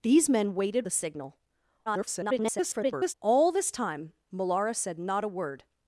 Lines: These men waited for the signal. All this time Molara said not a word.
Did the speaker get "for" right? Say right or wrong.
wrong